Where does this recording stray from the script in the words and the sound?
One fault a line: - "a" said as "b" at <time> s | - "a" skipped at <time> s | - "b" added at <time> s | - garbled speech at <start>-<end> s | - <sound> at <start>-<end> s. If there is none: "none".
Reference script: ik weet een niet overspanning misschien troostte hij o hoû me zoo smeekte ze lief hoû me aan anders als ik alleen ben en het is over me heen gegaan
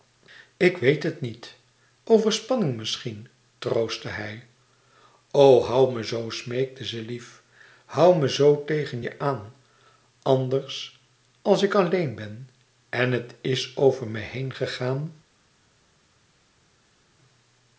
- "een" said as "het" at 1.0 s
- "zoo tegen je" added at 8.3 s